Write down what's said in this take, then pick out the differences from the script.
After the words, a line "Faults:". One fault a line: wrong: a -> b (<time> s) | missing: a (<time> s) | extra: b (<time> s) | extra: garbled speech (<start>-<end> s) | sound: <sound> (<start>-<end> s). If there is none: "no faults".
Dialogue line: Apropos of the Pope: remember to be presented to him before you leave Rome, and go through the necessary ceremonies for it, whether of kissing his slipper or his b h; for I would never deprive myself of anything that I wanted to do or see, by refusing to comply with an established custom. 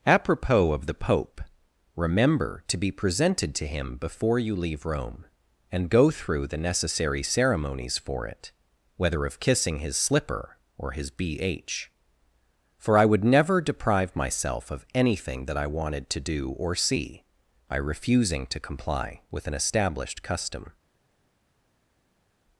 Apropos of the Pope: remember to be presented to him before you leave Rome, and go through the necessary ceremonies for it, whether of kissing his slipper or his b h; for I would never deprive myself of anything that I wanted to do or see, by refusing to comply with an established custom.
Faults:
no faults